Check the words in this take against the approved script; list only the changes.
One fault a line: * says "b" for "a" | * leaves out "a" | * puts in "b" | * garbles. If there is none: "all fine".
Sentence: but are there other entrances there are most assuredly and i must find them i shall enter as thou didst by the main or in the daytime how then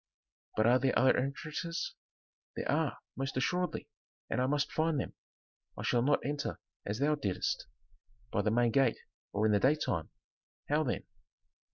* puts in "not"
* puts in "gate"